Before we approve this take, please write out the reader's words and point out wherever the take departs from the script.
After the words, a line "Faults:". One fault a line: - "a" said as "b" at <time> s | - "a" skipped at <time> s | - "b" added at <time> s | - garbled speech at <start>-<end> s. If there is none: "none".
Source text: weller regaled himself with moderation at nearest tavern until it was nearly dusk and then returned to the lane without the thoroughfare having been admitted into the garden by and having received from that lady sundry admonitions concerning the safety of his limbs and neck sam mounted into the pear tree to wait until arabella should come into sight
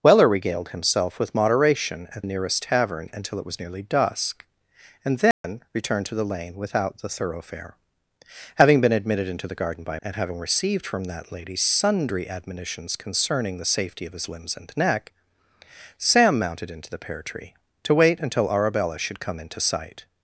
weller regaled himself with moderation at nearest tavern until it was nearly dusk and then returned to the lane without the thoroughfare having been admitted into the garden by and having received from that lady sundry admonitions concerning the safety of his limbs and neck sam mounted into the pear tree to wait until arabella should come into sight
Faults:
none